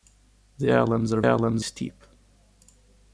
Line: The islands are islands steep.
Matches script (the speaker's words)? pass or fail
pass